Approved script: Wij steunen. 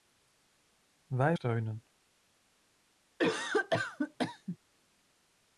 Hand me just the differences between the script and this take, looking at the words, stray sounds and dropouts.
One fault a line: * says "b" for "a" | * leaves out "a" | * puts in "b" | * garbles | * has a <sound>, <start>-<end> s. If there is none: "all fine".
* has a cough, 3.2-4.6 s